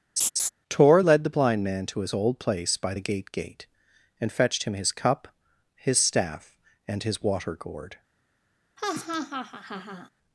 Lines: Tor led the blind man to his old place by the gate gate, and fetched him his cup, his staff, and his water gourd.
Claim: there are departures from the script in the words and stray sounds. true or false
true